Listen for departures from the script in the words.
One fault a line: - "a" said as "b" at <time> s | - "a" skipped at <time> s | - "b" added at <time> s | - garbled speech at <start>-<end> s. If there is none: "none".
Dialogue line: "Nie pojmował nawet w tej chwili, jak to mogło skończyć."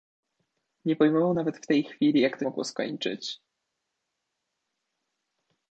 none